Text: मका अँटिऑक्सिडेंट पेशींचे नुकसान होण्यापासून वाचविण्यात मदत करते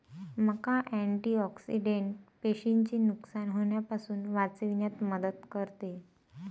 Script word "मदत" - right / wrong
right